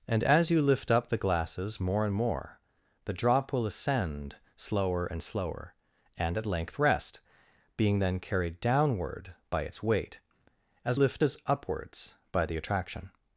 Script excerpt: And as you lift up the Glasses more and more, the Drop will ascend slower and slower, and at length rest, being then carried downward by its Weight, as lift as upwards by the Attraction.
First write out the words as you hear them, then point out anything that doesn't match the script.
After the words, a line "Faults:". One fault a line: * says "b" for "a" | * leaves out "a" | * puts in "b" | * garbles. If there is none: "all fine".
And as you lift up the Glasses more and more, the Drop will ascend slower and slower, and at length rest, being then carried downward by its Weight, as lift as upwards by the Attraction.
Faults:
all fine